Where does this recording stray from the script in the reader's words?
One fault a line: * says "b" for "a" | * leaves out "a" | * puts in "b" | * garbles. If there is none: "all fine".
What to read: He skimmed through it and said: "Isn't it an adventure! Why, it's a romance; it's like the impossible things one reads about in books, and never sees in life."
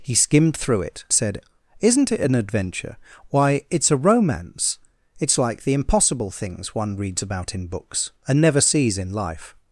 * leaves out "and"